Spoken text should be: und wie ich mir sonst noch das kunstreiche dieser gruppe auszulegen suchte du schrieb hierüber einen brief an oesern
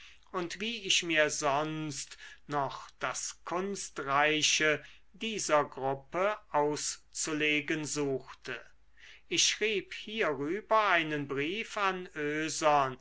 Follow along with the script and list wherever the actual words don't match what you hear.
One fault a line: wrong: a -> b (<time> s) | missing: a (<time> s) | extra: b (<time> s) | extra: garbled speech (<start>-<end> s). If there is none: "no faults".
wrong: du -> ich (9.3 s)